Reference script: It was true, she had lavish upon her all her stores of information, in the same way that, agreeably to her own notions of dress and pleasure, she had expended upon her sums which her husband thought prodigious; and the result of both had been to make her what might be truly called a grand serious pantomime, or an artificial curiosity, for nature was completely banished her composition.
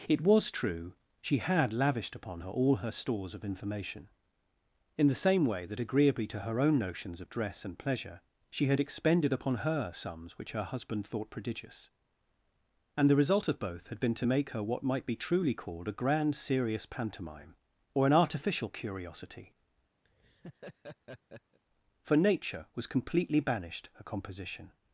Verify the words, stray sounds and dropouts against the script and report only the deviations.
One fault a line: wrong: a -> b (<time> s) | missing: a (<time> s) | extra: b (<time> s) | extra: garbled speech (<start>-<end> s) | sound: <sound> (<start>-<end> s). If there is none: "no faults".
wrong: lavish -> lavished (1.7 s)
sound: laugh (20.0-21.6 s)